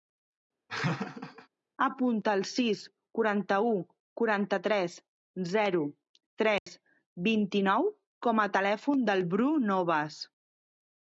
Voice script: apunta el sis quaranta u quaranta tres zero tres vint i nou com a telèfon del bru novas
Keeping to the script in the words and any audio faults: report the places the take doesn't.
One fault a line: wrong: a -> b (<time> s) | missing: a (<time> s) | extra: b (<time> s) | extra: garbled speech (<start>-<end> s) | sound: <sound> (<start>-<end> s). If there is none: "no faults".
sound: laugh (0.7-1.5 s)
sound: dropout (6.6-6.7 s)